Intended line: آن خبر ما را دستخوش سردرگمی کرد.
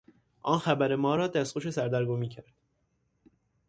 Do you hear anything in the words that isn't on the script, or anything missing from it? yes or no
no